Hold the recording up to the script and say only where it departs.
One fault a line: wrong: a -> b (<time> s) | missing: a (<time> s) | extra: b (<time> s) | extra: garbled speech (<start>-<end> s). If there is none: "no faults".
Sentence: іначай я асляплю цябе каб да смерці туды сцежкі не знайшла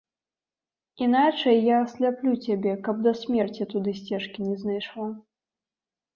no faults